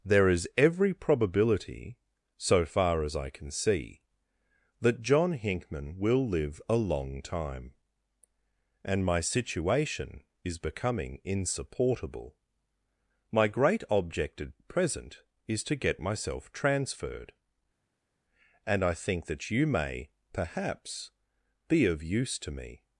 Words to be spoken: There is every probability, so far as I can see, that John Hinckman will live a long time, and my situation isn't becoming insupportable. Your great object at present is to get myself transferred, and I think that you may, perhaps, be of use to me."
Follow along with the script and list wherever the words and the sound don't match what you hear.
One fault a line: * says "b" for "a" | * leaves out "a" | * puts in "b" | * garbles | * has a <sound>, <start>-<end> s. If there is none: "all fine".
* says "is" for "isn't"
* says "My" for "Your"